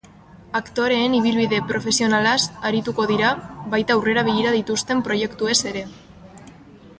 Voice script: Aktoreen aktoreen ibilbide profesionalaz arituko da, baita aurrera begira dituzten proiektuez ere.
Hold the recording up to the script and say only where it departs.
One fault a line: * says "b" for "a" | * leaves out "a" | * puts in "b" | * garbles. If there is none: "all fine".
* leaves out "aktoreen"
* says "dira" for "da"